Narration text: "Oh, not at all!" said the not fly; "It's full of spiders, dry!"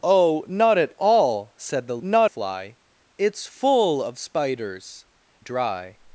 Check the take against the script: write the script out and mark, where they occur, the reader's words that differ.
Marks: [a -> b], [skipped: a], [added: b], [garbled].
"Oh, not at all!" said the not fly; "It's full of spiders, dry!"